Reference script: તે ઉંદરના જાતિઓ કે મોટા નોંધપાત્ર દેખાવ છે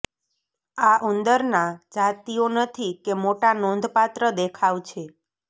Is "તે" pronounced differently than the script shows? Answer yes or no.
yes